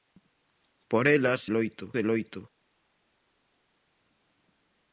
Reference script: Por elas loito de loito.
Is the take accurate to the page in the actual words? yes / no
yes